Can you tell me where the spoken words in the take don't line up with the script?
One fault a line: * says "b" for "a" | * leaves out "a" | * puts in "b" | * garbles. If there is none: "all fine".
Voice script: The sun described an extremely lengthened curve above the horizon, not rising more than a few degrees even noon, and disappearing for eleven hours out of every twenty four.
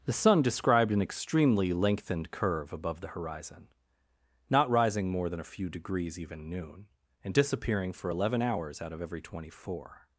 all fine